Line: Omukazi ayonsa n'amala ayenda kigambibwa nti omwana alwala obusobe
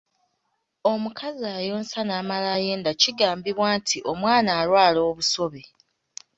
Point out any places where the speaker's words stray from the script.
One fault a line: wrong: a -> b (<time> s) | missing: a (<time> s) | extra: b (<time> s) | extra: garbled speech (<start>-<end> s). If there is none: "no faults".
no faults